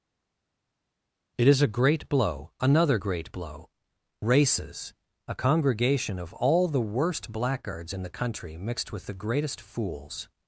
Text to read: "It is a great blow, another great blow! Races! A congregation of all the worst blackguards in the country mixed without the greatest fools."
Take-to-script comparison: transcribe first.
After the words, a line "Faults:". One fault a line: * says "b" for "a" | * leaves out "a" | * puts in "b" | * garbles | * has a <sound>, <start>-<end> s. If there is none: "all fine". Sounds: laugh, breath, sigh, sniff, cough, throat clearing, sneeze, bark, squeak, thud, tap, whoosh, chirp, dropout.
"It is a great blow, another great blow! Races! A congregation of all the worst blackguards in the country mixed with the greatest fools."
Faults:
* says "with" for "without"